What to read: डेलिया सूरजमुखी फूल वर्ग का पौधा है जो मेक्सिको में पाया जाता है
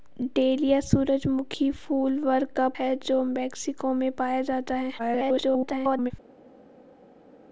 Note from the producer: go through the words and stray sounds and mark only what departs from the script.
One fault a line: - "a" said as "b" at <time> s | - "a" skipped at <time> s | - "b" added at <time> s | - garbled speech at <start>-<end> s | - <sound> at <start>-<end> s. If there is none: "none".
- "पौधा" skipped at 2.7 s
- garbled speech at 5.0-6.1 s